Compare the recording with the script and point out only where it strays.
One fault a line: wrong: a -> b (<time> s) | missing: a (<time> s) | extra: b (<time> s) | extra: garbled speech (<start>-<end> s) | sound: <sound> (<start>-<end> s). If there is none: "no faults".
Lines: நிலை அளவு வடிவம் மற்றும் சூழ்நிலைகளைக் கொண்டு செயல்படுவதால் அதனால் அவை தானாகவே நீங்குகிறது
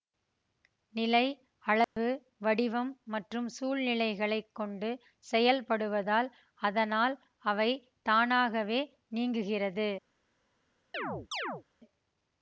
sound: dropout (1.8-2.0 s)
sound: chirp (10.9-11.6 s)